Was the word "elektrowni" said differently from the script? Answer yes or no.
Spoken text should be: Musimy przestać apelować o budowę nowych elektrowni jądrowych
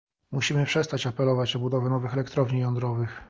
no